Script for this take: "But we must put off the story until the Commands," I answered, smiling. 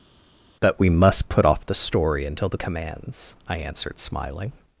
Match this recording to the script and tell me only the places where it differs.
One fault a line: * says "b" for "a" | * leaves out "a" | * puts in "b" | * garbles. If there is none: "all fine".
all fine